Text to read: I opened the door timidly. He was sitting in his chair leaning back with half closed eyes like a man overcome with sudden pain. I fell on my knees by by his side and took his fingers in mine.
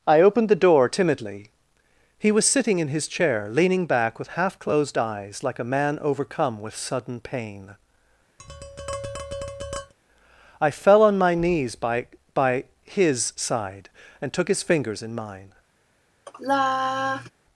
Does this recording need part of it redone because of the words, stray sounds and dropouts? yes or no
yes